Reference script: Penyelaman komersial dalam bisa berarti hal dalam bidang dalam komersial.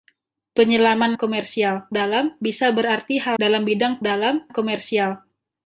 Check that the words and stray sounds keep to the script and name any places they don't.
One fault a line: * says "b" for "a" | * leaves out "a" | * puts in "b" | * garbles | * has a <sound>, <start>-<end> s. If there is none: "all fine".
all fine